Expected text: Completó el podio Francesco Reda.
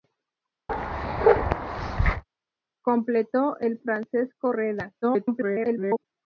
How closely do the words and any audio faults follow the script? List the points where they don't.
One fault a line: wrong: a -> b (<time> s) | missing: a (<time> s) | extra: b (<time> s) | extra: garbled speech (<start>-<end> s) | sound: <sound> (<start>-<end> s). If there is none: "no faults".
sound: bark (0.7-2.2 s)
missing: podio (3.8 s)
extra: garbled speech (5.0-6.0 s)